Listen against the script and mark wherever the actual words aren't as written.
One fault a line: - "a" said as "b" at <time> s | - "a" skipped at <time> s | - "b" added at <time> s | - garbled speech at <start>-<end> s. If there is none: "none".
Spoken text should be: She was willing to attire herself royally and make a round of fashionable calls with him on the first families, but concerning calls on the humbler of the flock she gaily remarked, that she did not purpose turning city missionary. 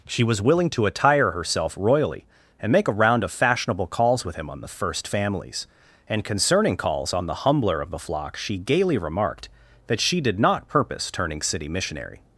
- "but" said as "and" at 6.1 s